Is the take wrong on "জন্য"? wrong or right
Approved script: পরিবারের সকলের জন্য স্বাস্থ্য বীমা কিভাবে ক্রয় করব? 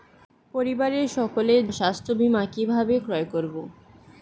wrong